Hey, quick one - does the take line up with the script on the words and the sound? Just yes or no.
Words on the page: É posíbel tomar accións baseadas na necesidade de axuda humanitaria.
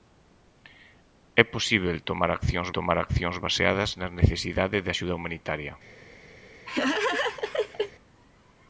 no